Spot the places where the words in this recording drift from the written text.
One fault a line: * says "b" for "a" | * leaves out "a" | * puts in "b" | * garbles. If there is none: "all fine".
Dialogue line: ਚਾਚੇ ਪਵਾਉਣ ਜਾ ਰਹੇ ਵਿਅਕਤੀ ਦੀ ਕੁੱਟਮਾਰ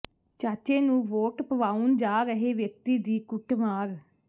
* puts in "ਨੂੰ ਵੋਟ"